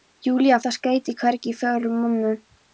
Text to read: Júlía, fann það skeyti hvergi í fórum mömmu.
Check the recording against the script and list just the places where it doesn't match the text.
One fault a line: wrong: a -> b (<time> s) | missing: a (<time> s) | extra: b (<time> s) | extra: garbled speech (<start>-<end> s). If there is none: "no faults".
missing: fann (0.6 s)